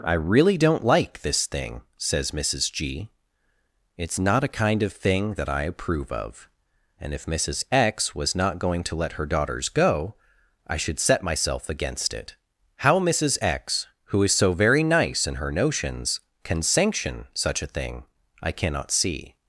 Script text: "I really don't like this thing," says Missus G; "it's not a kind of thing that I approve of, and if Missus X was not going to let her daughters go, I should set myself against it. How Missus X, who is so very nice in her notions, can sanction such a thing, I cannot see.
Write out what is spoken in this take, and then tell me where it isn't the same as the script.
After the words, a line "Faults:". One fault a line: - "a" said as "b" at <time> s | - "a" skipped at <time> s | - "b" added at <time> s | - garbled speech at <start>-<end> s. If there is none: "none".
"I really don't like this thing," says Missus G; "it's not a kind of thing that I approve of, and if Missus X was not going to let her daughters go, I should set myself against it. How Missus X, who is so very nice in her notions, can sanction such a thing, I cannot see.
Faults:
none